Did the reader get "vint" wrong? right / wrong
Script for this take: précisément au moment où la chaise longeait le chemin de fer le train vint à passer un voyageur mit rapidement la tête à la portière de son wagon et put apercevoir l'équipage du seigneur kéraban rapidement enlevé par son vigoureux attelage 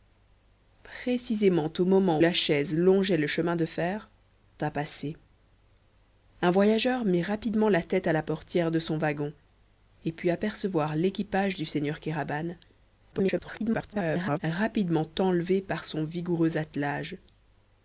wrong